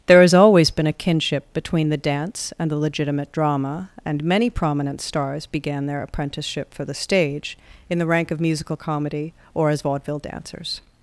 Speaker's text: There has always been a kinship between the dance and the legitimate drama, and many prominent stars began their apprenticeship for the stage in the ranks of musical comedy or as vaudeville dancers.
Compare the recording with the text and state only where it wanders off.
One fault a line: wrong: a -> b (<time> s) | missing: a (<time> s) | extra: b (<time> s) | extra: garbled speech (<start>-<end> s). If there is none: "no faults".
wrong: ranks -> rank (8.1 s)